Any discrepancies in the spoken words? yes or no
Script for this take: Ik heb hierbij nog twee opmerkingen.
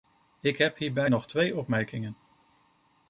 no